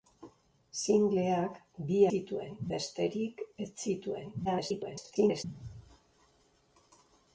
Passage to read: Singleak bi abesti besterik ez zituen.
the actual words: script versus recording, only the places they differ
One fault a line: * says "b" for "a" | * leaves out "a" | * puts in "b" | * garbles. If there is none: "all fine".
* says "zituen" for "abesti"
* garbles